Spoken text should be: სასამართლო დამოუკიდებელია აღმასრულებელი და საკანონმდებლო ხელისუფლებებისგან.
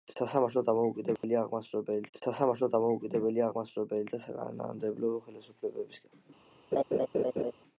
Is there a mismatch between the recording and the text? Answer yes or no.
yes